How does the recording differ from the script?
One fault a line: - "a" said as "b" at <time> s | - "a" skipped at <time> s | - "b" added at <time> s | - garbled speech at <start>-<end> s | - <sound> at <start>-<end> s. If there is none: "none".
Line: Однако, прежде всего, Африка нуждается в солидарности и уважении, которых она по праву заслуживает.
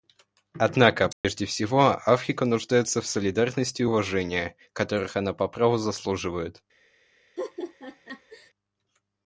- dropout at 1.1-1.2 s
- laugh at 7.4-8.5 s